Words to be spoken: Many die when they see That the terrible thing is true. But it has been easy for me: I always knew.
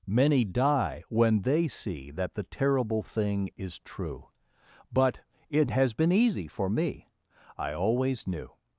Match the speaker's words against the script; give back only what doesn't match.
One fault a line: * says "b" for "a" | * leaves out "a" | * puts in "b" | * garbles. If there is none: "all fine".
all fine